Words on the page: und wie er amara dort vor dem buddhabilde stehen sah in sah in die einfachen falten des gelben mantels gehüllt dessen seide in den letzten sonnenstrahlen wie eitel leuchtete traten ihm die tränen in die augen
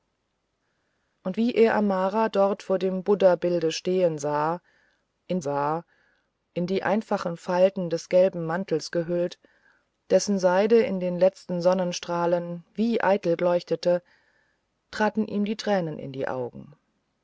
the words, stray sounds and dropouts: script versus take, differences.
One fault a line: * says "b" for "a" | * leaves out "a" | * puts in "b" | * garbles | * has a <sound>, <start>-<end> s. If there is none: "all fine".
all fine